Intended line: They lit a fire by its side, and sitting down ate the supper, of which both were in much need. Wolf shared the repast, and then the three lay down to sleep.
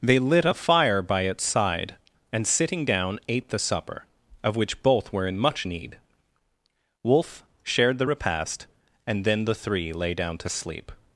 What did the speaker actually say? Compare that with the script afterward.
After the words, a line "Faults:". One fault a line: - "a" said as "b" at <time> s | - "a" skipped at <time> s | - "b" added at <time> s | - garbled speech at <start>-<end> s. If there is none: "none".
They lit a fire by its side, and sitting down ate the supper, of which both were in much need. Wolf shared the repast, and then the three lay down to sleep.
Faults:
none